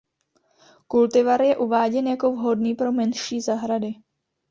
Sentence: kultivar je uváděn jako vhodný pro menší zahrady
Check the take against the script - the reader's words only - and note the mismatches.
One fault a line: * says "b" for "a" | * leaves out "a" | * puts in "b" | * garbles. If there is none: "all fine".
all fine